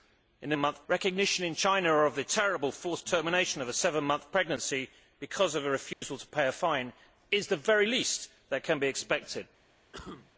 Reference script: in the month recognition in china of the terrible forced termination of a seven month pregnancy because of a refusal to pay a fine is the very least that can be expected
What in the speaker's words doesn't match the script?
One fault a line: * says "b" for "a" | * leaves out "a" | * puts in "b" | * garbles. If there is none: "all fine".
all fine